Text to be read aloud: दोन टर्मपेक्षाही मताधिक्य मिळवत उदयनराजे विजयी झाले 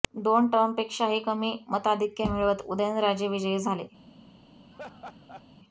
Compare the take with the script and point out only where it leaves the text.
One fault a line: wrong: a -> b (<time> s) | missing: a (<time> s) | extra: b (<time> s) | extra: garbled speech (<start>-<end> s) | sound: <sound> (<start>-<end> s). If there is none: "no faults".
extra: कमी (1.2 s)
sound: laugh (4.7-5.5 s)